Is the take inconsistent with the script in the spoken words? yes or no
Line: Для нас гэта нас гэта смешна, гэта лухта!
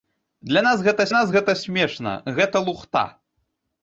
no